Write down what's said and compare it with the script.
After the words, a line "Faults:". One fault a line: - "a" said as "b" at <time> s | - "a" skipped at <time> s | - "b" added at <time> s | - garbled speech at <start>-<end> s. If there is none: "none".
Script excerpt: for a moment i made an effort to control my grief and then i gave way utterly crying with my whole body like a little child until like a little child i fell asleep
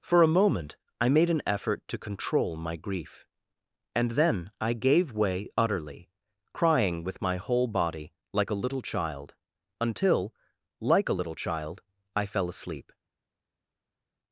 for a moment i made an effort to control my grief and then i gave way utterly crying with my whole body like a little child until like a little child i fell asleep
Faults:
none